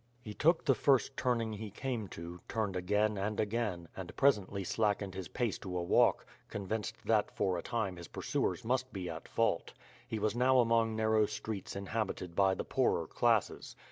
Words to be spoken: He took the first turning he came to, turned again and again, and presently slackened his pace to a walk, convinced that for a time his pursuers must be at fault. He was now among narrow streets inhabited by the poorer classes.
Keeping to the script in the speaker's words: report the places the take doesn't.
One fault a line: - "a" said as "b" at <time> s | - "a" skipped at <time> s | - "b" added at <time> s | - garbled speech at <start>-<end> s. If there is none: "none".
none